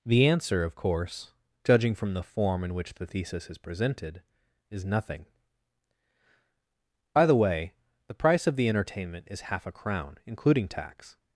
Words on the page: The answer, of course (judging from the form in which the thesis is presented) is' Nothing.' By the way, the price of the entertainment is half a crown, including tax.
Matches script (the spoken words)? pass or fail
pass